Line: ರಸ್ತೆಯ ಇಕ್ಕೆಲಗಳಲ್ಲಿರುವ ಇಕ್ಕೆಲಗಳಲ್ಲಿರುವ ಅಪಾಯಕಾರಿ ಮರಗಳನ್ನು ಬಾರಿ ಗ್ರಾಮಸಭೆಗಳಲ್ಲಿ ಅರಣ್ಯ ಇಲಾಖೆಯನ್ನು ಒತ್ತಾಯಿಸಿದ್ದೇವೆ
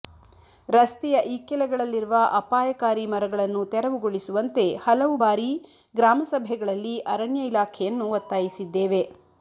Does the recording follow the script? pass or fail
fail